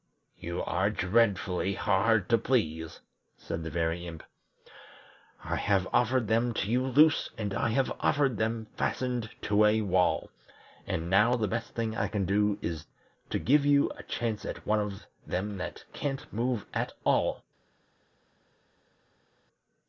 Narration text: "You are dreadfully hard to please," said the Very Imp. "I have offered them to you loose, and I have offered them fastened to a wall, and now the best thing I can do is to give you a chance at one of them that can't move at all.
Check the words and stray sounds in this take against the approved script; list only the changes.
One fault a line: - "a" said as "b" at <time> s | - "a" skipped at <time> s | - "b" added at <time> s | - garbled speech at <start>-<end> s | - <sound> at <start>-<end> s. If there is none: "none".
none